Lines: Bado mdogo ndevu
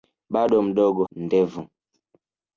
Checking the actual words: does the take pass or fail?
pass